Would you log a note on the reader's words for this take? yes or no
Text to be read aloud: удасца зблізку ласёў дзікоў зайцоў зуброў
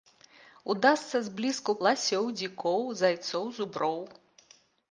no